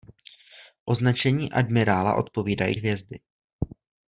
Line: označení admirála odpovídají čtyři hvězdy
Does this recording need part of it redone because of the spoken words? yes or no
yes